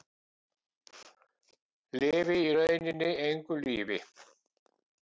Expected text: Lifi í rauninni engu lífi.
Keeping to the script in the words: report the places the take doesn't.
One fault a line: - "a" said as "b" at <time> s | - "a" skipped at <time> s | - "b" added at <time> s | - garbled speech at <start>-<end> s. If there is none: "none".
none